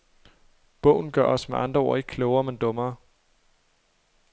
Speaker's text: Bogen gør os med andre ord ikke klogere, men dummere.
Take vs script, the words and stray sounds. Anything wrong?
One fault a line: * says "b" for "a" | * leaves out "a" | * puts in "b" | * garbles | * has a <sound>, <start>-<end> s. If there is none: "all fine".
all fine